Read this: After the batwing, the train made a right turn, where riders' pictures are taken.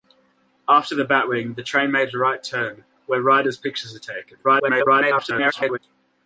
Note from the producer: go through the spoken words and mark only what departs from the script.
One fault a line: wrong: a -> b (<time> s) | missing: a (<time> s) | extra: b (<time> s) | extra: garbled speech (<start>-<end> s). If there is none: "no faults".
extra: garbled speech (4.4-5.8 s)